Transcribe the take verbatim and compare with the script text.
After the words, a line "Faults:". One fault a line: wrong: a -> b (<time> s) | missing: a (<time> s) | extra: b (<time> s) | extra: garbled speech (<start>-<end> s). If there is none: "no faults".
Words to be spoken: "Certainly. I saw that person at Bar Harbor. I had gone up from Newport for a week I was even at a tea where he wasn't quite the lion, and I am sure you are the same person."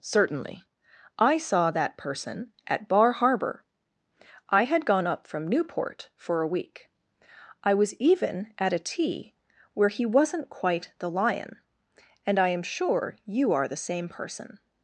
"Certainly. I saw that person at Bar Harbor. I had gone up from Newport for a week I was even at a tea where he wasn't quite the lion, and I am sure you are the same person."
Faults:
no faults